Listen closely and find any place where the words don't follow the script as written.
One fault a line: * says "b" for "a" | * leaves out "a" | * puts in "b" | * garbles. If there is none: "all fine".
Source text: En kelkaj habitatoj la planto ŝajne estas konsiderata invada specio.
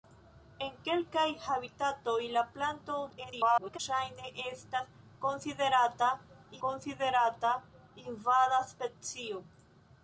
* garbles
* puts in "konsiderata"